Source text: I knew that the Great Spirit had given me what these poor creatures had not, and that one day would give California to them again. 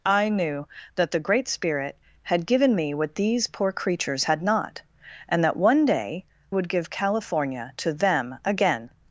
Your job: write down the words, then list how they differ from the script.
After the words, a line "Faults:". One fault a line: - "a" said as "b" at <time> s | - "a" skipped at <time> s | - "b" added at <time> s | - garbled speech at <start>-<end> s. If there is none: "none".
I knew that the Great Spirit had given me what these poor creatures had not, and that one day would give California to them again.
Faults:
none